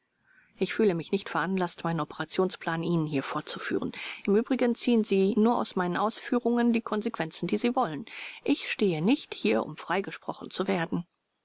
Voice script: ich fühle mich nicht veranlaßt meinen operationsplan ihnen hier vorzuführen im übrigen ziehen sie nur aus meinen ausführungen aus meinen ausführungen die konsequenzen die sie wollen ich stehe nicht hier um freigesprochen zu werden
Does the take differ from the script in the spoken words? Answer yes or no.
yes